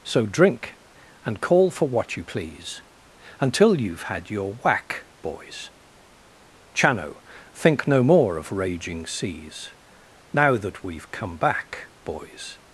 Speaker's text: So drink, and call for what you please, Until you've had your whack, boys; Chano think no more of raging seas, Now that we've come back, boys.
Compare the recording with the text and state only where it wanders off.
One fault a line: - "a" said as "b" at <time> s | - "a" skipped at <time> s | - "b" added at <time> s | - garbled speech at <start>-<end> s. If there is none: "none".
none